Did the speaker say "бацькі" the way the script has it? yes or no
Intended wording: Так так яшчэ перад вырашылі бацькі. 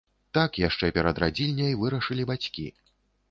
yes